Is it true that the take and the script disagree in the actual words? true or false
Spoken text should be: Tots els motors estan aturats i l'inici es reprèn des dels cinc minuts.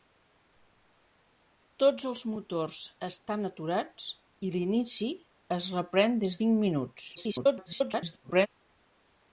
true